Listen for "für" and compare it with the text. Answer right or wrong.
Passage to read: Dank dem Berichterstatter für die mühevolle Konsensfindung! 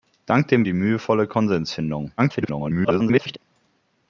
wrong